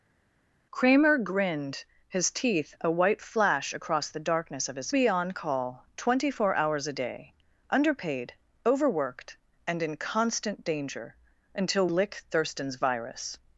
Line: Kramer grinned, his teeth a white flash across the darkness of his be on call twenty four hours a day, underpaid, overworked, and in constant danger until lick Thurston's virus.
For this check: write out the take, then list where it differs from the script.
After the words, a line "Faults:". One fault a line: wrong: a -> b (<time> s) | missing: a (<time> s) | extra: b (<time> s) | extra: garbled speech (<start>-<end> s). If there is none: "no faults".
Kramer grinned, his teeth a white flash across the darkness of his be on call twenty four hours a day, underpaid, overworked, and in constant danger until lick Thurston's virus.
Faults:
no faults